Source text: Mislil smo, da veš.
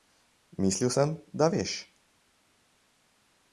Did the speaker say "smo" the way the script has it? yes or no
no